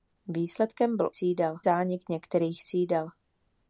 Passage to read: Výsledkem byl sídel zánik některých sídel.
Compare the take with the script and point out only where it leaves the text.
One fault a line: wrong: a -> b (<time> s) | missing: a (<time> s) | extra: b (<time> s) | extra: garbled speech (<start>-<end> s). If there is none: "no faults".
no faults